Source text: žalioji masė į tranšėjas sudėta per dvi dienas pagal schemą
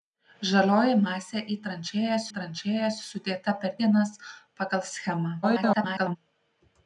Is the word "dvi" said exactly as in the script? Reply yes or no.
no